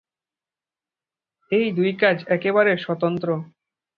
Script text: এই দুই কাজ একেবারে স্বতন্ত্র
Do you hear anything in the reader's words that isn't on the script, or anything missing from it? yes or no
no